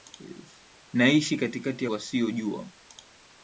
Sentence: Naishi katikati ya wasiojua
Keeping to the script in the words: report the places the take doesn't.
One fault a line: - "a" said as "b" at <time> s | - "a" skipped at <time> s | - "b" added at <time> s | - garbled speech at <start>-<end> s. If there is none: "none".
none